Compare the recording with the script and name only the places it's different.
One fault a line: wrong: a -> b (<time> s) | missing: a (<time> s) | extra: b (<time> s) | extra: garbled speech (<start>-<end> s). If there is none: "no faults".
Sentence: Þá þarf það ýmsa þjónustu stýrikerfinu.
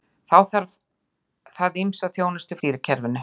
no faults